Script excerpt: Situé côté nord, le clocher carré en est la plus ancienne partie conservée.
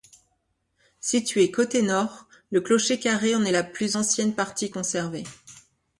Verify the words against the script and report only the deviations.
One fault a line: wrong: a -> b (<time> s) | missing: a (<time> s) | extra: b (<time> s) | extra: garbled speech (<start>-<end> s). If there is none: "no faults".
no faults